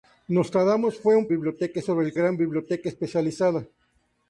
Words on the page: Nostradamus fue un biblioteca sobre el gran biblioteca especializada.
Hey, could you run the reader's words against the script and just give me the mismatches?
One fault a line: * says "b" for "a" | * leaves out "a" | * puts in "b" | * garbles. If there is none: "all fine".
all fine